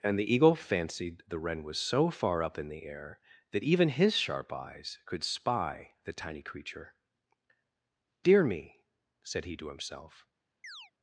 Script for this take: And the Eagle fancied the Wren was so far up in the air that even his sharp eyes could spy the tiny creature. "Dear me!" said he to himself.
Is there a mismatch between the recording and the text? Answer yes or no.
no